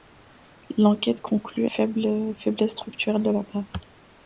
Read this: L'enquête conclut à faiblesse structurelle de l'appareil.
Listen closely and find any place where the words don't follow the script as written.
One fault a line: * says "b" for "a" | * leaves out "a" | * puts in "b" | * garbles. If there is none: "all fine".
all fine